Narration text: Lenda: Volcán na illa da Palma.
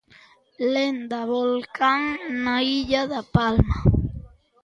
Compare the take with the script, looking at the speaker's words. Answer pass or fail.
pass